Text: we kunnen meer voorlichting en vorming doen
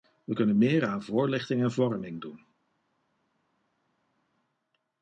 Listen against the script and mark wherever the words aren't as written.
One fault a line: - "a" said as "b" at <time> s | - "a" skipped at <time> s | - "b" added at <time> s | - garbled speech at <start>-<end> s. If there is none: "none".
- "aan" added at 0.9 s